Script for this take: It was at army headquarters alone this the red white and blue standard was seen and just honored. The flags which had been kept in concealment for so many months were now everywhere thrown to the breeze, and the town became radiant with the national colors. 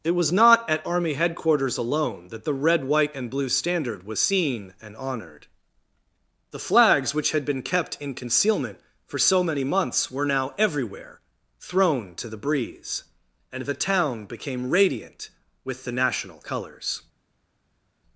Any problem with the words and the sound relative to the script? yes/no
yes